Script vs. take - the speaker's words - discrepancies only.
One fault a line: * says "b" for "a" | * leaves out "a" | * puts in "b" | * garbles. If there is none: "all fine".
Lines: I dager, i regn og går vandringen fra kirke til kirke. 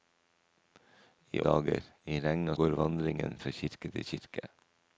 all fine